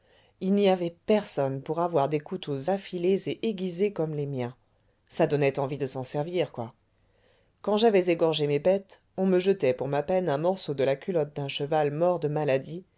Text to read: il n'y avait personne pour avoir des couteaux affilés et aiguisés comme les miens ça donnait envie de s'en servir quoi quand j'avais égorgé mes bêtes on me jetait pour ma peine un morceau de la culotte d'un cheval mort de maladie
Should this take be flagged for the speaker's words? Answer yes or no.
no